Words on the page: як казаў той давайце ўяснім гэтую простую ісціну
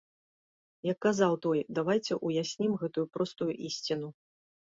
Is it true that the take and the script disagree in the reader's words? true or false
false